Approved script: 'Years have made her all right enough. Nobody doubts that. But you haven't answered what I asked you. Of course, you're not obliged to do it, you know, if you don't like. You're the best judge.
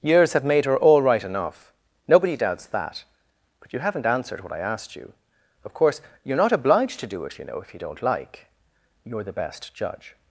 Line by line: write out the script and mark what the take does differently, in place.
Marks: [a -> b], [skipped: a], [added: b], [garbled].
'Years have made her all right enough. Nobody doubts that. But you haven't answered what I asked you. Of course, you're not obliged to do it, you know, if you don't like. You're the best judge.